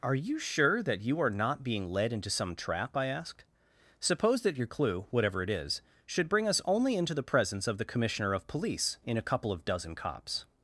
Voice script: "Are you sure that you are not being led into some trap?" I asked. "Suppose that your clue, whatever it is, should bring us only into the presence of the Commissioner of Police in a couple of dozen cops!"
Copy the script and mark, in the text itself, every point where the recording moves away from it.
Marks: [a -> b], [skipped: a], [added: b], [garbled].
"Are you sure that you are not being led into some trap?" I asked. "Suppose that your clue, whatever it is, should bring us only into the presence of the Commissioner of Police in a couple of dozen cops!"